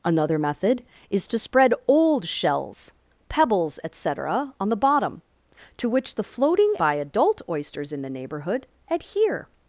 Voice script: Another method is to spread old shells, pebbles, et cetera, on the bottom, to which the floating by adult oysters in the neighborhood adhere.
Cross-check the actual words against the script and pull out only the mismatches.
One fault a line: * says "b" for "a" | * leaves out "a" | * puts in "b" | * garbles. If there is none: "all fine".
all fine